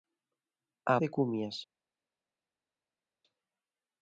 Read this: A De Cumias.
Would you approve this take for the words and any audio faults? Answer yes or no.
yes